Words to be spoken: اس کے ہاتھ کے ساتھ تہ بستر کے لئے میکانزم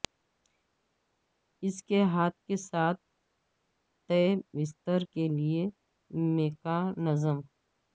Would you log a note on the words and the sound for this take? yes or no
no